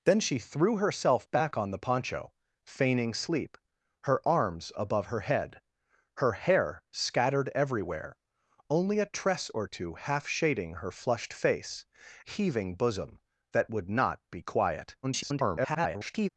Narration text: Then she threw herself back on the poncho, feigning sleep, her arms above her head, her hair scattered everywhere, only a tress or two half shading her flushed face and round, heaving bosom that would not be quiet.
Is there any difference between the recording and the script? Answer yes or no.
yes